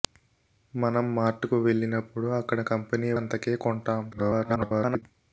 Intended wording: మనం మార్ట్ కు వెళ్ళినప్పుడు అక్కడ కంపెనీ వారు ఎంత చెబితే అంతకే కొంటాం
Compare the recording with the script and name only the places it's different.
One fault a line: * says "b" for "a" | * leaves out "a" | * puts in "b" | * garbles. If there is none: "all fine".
* leaves out "వారు ఎంత చెబితే"
* garbles